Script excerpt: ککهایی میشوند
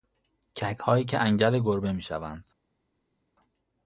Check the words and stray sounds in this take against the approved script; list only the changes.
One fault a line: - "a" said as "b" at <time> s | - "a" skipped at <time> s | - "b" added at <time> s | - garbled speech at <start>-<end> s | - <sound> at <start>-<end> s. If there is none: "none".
- "که انگل گربه" added at 1.1 s